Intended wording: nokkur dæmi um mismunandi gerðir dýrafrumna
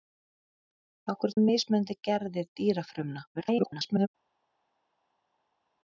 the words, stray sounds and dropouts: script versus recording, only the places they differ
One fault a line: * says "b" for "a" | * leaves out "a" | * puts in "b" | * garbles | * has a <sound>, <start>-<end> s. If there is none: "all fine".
* leaves out "dæmi"
* garbles